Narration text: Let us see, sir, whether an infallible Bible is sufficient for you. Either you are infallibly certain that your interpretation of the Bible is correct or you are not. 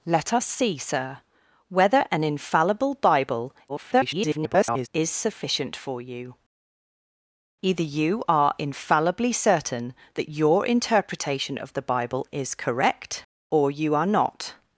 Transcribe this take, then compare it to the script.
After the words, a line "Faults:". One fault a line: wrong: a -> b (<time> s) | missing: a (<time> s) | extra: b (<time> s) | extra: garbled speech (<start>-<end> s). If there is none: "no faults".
Let us see, sir, whether an infallible Bible [garbled] is sufficient for you. Either you are infallibly certain that your interpretation of the Bible is correct or you are not.
Faults:
extra: garbled speech (3.7-4.9 s)